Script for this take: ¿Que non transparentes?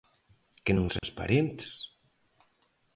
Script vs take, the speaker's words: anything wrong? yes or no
no